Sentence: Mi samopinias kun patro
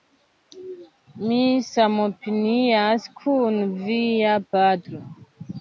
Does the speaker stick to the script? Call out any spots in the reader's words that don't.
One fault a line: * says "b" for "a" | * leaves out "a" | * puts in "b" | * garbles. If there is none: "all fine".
* puts in "via"